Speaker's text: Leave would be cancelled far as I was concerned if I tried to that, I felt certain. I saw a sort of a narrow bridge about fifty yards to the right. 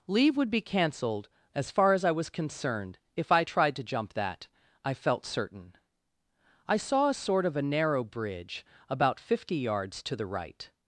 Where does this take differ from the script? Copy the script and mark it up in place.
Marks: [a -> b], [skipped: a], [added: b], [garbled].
Leave would be cancelled [added: as] far as I was concerned if I tried to [added: jump] that, I felt certain. I saw a sort of a narrow bridge about fifty yards to the right.